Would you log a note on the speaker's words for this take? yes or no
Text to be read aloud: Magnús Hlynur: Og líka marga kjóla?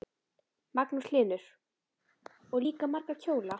no